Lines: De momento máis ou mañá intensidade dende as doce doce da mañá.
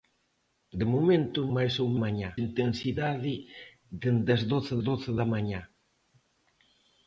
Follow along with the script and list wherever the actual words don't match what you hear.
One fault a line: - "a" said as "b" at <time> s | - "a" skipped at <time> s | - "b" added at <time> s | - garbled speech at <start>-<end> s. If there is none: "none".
none